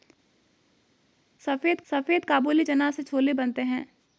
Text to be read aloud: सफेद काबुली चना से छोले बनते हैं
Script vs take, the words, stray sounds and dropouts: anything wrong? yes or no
yes